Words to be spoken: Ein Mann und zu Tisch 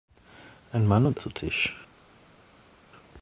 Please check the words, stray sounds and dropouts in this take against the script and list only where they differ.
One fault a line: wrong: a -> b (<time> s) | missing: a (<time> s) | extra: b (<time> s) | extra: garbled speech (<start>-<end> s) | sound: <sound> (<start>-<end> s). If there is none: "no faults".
no faults